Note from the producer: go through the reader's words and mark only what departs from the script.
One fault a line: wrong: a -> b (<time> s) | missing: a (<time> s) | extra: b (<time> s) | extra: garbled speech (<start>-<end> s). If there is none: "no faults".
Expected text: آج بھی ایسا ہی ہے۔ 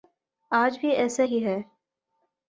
no faults